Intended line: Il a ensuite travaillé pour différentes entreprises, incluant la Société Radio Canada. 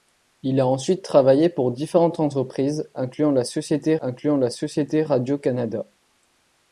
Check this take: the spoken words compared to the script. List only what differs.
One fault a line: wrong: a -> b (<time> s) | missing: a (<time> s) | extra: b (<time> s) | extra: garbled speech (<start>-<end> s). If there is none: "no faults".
extra: incluant la Société (4.0 s)